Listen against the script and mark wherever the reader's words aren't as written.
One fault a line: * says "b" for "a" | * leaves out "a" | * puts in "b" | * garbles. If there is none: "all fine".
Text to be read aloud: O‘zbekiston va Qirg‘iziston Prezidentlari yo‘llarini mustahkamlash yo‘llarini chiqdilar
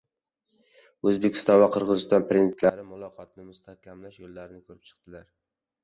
* says "muloqotni" for "yo‘llarini"
* puts in "ko‘rib"